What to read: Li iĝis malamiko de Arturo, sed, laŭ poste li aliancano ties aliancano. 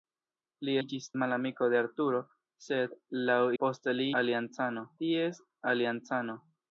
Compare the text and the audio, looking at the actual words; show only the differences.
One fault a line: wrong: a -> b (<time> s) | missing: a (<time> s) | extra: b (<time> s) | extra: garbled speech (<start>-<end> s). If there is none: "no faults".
no faults